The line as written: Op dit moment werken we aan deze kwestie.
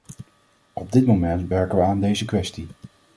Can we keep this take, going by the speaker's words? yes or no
yes